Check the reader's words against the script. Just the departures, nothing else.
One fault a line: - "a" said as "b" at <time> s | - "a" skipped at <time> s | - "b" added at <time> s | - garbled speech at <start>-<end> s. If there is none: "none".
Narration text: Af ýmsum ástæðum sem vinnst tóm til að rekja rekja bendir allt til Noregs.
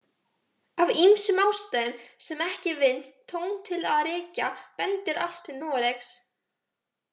- "ekki" added at 2.5 s
- "rekja" skipped at 4.5 s